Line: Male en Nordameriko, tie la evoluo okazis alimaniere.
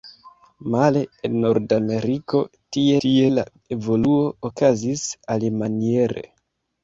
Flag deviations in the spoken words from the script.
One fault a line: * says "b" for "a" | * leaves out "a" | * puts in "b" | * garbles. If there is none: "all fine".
* puts in "tie"